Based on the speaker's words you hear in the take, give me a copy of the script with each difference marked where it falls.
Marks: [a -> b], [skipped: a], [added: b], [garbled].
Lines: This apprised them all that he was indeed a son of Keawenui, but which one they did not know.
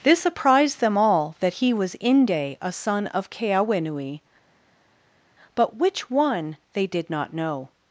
This apprised them all that he was [indeed -> inde] a son of Keawenui, but which one they did not know.